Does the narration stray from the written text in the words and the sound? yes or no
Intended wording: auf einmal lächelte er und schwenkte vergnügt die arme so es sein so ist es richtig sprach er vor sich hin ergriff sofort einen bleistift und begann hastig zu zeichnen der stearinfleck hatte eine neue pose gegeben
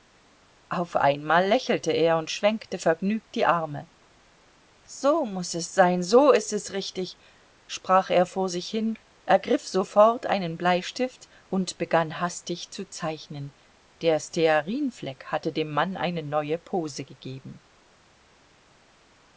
yes